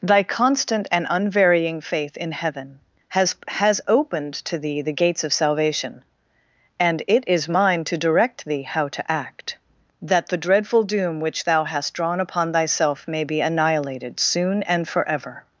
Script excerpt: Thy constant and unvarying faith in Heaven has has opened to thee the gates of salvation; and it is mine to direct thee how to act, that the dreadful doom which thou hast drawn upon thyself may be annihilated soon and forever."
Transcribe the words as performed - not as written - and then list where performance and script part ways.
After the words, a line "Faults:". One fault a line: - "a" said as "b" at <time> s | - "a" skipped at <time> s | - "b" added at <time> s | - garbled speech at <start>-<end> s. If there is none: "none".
Thy constant and unvarying faith in Heaven has has opened to thee the gates of salvation; and it is mine to direct thee how to act, that the dreadful doom which thou hast drawn upon thyself may be annihilated soon and forever."
Faults:
none